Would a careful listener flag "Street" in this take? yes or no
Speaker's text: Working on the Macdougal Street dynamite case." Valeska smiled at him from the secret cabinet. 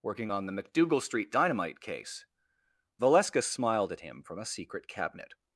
no